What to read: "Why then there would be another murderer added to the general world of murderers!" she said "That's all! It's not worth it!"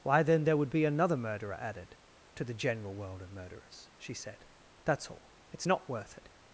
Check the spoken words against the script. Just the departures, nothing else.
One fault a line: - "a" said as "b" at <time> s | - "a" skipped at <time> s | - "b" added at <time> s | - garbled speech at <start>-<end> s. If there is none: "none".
none